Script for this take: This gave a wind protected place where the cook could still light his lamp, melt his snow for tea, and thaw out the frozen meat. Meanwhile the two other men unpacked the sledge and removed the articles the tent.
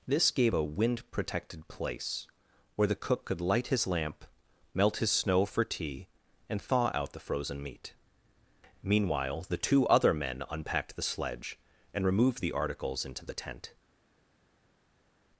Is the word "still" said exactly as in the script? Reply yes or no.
no